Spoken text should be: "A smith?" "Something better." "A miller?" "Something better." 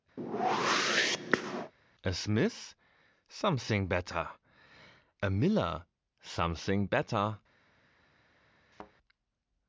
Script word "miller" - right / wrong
right